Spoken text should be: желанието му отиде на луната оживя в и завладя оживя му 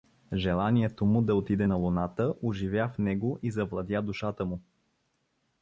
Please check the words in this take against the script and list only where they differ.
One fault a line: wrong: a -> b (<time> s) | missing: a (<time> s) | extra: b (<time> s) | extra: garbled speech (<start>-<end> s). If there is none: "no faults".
extra: да (1.2 s)
extra: него (3.0 s)
wrong: оживя -> душата (4.0 s)